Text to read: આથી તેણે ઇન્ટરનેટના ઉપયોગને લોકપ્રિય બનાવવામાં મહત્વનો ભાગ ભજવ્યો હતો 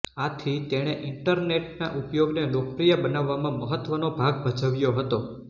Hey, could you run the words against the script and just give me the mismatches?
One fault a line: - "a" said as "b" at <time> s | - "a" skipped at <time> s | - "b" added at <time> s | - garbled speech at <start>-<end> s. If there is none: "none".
none